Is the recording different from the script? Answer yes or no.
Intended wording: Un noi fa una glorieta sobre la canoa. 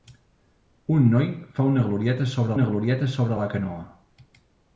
yes